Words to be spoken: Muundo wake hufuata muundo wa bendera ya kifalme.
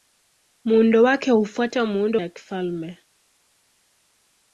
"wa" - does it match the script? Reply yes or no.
no